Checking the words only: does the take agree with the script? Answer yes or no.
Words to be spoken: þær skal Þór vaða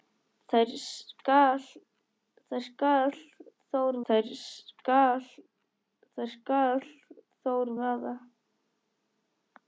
no